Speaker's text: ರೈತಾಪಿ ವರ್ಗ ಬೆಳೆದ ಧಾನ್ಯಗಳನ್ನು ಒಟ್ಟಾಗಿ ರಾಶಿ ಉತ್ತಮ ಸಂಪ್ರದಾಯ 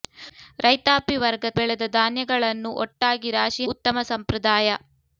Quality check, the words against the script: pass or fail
pass